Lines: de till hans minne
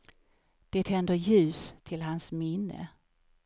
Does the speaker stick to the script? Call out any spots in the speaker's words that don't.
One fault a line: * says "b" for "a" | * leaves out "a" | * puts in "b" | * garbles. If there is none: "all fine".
* puts in "tänder ljus"